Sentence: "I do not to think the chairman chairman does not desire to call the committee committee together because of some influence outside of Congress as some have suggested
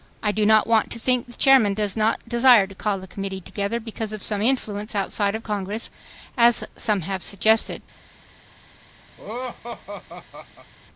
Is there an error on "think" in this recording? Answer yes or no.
no